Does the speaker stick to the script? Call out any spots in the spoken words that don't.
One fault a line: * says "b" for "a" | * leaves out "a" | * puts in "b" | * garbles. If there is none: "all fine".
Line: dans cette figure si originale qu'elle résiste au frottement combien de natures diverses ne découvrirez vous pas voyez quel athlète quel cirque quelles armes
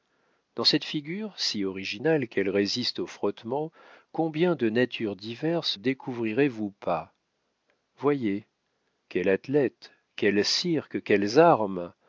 * leaves out "ne"